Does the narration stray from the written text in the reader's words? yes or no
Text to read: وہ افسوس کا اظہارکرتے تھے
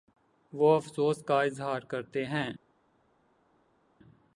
yes